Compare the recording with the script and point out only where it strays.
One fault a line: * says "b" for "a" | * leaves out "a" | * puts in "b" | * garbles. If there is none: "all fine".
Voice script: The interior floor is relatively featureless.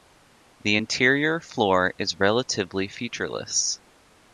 all fine